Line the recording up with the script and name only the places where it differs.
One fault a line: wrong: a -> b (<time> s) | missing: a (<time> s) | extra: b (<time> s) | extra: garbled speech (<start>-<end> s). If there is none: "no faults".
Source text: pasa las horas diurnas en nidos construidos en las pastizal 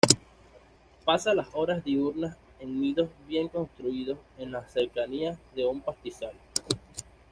extra: bien (3.3 s)
extra: cercanías de un (4.7 s)